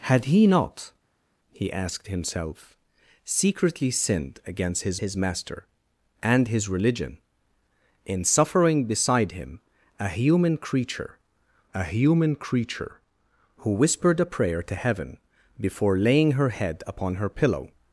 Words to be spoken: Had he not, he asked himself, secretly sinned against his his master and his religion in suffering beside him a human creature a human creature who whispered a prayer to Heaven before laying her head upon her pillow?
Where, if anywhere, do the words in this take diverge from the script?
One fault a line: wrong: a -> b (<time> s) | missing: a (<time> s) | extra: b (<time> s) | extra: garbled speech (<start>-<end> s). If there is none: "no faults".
no faults